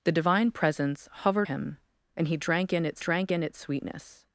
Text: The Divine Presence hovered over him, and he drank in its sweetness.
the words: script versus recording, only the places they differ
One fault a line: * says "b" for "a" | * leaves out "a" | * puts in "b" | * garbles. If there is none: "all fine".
* leaves out "over"
* puts in "drank in its"